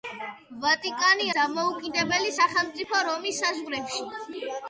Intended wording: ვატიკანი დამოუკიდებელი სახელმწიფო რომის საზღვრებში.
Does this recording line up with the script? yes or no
yes